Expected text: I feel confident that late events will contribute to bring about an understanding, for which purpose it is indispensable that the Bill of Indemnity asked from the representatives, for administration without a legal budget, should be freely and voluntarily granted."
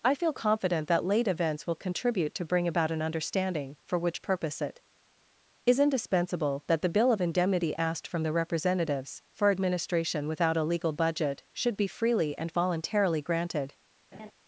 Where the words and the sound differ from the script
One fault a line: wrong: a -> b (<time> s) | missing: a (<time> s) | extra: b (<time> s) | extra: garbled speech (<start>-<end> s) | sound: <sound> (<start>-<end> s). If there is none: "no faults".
sound: laugh (14.1-14.3 s)